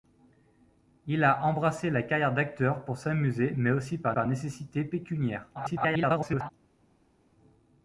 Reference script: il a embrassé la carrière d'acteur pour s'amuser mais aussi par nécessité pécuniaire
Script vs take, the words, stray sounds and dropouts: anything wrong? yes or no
yes